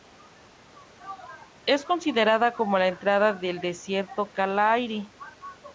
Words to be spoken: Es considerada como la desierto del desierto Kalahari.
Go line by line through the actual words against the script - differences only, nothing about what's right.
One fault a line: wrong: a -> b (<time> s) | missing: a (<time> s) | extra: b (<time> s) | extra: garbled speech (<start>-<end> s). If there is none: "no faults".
wrong: desierto -> entrada (2.9 s)